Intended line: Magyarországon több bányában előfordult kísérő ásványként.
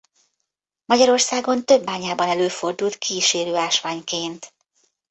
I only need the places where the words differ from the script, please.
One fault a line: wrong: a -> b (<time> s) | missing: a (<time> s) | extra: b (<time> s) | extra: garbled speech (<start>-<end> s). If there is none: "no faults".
no faults